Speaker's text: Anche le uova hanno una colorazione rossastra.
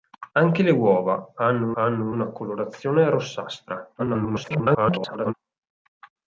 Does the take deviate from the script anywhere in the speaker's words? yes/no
yes